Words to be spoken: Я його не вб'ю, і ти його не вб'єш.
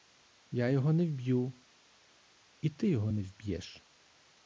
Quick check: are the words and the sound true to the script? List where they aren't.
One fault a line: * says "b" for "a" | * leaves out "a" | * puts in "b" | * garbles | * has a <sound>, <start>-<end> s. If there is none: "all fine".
all fine